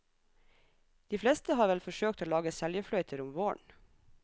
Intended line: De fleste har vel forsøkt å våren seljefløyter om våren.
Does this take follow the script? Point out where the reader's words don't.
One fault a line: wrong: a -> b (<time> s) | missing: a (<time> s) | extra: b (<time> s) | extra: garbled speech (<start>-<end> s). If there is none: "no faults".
wrong: våren -> lage (2.3 s)